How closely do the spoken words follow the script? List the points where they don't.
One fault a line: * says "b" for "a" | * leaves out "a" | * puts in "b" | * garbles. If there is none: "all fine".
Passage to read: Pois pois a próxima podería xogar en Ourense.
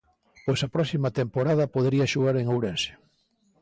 * leaves out "pois"
* puts in "temporada"